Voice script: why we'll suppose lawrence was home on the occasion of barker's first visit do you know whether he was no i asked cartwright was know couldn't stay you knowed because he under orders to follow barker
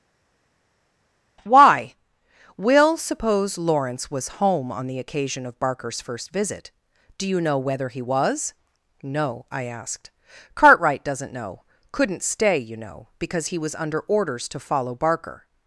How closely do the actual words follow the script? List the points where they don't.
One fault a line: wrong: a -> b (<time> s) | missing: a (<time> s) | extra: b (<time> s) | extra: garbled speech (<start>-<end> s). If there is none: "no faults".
wrong: was -> doesn't (11.0 s)
wrong: knowed -> know (12.8 s)
extra: was (13.6 s)